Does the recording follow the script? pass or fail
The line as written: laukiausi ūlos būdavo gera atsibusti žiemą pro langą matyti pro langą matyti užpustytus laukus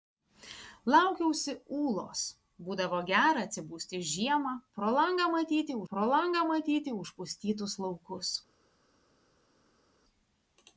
pass